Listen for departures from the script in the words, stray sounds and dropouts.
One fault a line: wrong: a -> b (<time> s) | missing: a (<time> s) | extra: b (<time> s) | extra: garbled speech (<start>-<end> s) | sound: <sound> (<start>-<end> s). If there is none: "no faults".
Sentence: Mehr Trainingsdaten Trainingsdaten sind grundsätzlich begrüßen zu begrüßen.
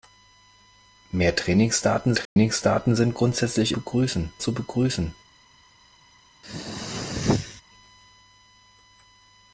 sound: dropout (2.2-2.4 s)
sound: throat clearing (6.4-7.6 s)